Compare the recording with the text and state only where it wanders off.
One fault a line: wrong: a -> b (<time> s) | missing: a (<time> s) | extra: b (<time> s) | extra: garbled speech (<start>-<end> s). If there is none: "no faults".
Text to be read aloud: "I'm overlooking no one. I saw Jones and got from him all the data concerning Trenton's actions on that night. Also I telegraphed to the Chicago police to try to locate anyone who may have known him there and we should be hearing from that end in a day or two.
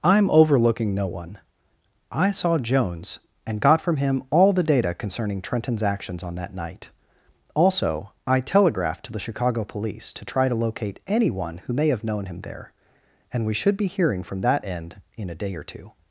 no faults